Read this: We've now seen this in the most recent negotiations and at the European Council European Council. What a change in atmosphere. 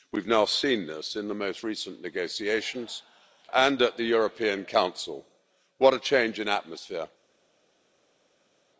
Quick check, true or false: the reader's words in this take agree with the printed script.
false